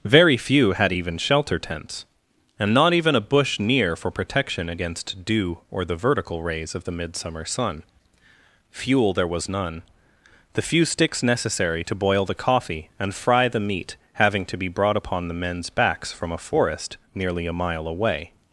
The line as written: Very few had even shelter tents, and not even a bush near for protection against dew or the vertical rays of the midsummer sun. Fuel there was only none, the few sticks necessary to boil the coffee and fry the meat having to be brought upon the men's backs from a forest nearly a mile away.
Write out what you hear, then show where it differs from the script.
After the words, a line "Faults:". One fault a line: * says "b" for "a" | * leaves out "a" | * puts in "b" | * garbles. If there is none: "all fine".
Very few had even shelter tents, and not even a bush near for protection against dew or the vertical rays of the midsummer sun. Fuel there was none, the few sticks necessary to boil the coffee and fry the meat having to be brought upon the men's backs from a forest nearly a mile away.
Faults:
* leaves out "only"